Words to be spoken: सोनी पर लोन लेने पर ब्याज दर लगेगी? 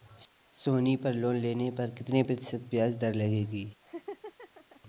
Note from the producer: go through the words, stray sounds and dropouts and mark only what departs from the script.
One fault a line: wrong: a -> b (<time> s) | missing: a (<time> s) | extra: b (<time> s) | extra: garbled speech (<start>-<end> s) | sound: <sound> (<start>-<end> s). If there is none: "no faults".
extra: कितने प्रतिशत (1.9 s)
sound: laugh (3.8-4.8 s)